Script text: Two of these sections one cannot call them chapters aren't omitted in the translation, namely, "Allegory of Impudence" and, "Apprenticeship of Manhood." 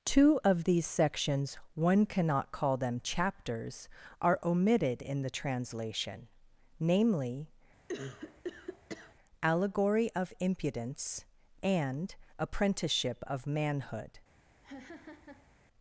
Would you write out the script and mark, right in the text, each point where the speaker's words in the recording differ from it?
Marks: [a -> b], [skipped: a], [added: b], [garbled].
Two of these sections one cannot call them chapters [aren't -> are] omitted in the translation, namely, "Allegory of Impudence" and, "Apprenticeship of Manhood."